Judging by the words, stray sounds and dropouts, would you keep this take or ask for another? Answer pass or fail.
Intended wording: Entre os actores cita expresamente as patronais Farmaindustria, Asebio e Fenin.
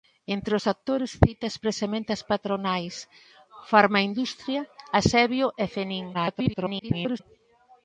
fail